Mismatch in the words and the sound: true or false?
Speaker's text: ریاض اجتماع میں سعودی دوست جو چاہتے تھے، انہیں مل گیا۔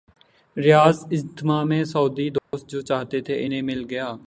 true